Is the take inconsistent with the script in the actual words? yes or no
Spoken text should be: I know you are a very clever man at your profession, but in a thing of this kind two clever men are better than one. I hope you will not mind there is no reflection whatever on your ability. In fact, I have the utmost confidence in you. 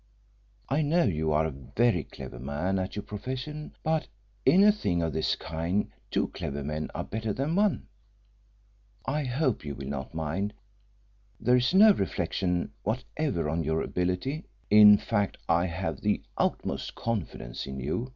no